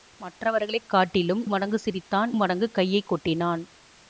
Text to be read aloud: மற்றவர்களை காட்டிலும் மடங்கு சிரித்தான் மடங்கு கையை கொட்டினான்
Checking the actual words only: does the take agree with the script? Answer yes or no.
yes